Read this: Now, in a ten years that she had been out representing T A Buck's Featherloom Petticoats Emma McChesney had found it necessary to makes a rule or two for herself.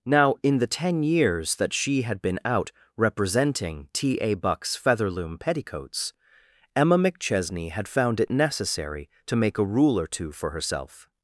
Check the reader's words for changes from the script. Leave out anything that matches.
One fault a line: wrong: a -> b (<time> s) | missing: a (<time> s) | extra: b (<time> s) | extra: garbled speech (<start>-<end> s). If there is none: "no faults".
wrong: a -> the (0.6 s)
wrong: makes -> make (9.4 s)